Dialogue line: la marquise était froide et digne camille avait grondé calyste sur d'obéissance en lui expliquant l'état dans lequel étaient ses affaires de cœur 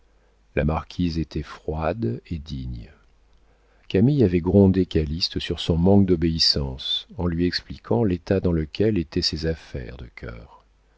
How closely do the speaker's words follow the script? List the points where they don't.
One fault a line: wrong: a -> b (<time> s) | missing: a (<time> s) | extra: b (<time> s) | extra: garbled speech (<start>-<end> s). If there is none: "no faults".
extra: son manque (5.6 s)